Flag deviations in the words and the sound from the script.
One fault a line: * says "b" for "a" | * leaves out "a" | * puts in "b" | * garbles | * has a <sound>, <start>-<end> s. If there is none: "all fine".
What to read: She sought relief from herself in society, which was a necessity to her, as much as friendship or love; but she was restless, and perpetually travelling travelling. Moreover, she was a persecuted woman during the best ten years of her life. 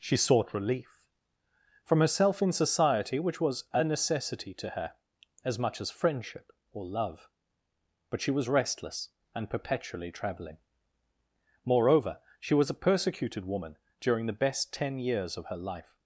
* leaves out "travelling"